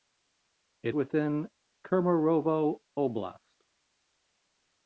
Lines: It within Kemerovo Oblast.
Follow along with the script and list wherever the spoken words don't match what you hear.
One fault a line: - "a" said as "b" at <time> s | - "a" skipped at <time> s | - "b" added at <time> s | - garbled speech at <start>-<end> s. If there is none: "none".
none